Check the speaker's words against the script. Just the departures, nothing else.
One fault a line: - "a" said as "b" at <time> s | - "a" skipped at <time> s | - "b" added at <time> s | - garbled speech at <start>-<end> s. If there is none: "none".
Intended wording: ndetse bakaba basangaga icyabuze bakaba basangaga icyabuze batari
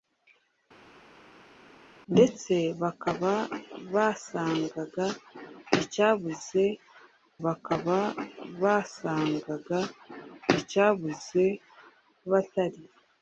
none